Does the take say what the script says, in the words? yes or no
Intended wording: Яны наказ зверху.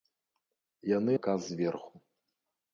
yes